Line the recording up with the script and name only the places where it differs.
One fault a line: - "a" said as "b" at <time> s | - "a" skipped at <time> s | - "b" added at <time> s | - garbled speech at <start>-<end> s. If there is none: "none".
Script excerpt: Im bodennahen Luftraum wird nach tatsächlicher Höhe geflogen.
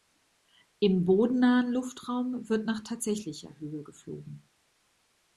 none